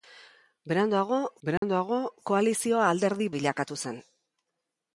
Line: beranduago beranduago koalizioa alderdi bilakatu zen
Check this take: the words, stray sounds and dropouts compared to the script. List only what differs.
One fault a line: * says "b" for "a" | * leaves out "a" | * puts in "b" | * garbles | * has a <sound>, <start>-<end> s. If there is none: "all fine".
* has a dropout, 1.6-1.6 s